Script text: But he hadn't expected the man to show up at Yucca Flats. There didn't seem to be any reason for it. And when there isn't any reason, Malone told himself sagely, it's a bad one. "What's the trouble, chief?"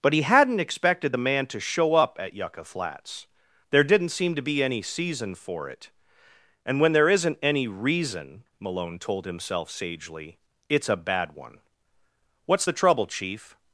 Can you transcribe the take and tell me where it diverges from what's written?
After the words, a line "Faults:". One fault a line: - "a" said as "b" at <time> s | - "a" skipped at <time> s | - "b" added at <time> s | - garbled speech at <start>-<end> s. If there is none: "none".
But he hadn't expected the man to show up at Yucca Flats. There didn't seem to be any season for it. And when there isn't any reason, Malone told himself sagely, it's a bad one. "What's the trouble, chief?"
Faults:
- "reason" said as "season" at 4.8 s